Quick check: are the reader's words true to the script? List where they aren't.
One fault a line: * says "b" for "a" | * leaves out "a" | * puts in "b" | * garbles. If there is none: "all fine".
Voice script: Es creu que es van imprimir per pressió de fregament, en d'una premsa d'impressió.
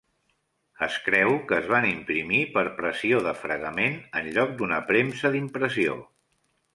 * puts in "lloc"